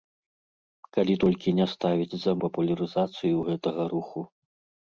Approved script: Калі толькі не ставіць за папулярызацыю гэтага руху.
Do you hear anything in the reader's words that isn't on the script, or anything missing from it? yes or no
no